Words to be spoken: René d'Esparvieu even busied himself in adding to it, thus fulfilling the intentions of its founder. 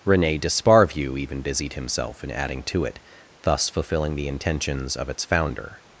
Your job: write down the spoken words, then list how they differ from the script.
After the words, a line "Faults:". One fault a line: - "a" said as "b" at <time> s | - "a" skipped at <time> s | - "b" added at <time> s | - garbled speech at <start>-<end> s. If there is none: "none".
René d'Esparvieu even busied himself in adding to it, thus fulfilling the intentions of its founder.
Faults:
none